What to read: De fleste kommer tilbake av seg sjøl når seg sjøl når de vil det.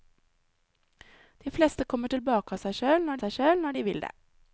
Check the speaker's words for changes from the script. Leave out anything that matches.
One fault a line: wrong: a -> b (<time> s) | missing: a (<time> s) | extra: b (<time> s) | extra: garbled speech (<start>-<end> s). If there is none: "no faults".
no faults